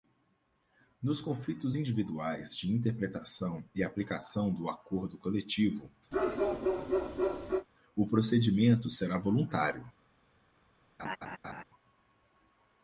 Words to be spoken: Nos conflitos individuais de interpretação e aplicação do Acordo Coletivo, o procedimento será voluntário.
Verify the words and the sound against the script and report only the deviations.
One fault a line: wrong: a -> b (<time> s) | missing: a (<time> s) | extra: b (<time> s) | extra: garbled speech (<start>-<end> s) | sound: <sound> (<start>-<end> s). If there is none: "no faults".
sound: bark (6.1-7.7 s)
sound: laugh (11.0-11.6 s)